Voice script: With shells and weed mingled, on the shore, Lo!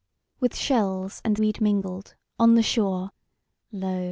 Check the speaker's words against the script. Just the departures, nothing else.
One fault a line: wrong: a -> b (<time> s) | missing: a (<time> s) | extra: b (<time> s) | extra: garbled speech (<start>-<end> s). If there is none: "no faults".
no faults